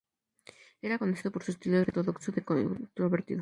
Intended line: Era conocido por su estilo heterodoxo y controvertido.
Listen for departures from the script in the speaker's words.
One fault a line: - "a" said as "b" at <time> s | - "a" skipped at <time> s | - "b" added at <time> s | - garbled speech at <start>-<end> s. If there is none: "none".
none